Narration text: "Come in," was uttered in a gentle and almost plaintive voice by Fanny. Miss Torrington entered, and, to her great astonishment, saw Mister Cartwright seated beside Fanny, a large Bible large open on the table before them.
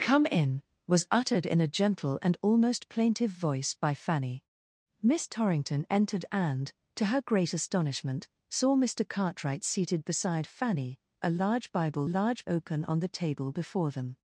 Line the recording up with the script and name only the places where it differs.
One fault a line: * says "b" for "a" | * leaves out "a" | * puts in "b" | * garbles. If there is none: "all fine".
all fine